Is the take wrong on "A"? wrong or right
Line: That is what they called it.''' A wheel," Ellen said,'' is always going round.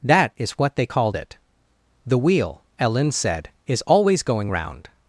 wrong